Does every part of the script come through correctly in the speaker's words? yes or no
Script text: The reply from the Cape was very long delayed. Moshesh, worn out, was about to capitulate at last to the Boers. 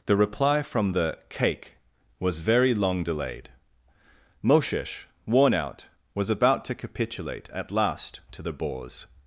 no